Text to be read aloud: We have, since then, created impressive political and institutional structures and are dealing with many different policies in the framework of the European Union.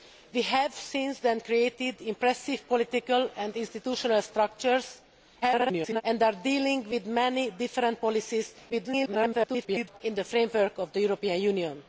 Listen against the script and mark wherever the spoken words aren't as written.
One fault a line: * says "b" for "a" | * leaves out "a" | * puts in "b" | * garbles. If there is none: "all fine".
* garbles
* garbles